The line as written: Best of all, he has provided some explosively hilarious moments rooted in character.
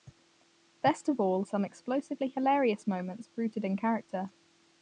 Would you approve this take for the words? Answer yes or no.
no